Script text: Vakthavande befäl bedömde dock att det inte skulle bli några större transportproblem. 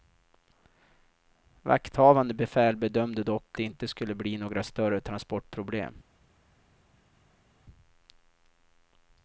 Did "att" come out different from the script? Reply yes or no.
yes